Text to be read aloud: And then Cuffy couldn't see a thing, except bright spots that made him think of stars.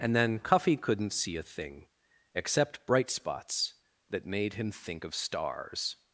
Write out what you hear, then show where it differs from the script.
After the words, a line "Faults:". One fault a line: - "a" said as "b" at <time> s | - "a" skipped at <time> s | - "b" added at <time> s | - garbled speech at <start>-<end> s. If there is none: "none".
And then Cuffy couldn't see a thing, except bright spots that made him think of stars.
Faults:
none